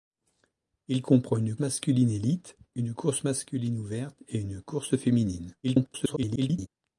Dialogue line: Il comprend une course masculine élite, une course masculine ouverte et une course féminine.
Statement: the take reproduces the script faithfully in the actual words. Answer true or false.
false